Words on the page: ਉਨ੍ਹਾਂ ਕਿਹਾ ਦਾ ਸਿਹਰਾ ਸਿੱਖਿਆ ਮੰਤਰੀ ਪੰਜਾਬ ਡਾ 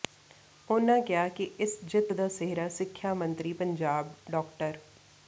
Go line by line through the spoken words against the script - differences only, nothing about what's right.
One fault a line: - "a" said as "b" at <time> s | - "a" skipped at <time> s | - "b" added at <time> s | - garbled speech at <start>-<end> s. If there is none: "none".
- "ਕਿ ਇਸ ਜਿੱਤ" added at 1.3 s